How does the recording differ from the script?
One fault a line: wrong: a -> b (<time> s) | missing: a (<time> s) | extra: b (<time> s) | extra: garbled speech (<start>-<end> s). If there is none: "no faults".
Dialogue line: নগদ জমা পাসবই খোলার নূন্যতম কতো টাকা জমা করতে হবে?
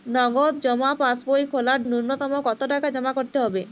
no faults